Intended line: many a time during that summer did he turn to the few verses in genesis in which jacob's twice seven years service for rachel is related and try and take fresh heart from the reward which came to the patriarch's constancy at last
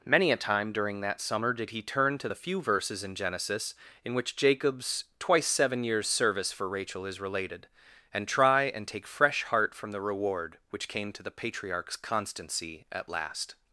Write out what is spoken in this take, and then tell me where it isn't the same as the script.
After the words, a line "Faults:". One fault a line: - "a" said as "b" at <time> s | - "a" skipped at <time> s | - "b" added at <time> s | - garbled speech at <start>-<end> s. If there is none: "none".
many a time during that summer did he turn to the few verses in genesis in which jacob's twice seven years service for rachel is related and try and take fresh heart from the reward which came to the patriarch's constancy at last
Faults:
none